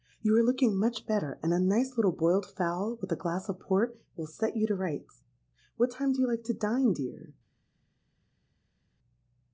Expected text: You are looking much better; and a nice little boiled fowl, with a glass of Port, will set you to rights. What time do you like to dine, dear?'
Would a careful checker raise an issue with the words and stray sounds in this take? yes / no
no